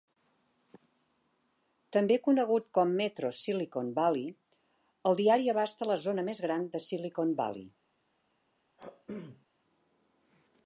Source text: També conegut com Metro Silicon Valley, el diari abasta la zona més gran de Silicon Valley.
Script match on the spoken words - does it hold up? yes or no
yes